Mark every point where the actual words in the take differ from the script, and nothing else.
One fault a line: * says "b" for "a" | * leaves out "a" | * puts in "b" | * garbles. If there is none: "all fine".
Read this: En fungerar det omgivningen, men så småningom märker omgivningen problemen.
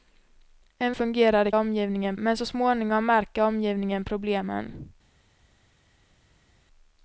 all fine